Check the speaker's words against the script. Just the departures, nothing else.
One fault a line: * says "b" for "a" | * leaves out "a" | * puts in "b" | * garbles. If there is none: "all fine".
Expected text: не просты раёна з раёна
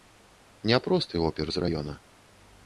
* says "опер" for "раёна"